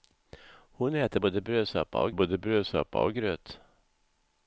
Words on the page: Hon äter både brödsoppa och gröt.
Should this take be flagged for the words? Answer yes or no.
yes